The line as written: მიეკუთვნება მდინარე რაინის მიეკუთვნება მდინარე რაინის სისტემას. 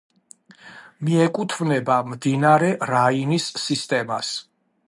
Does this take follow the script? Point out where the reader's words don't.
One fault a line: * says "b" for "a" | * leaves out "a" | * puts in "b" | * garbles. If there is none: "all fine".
* leaves out "მიეკუთვნება მდინარე რაინის"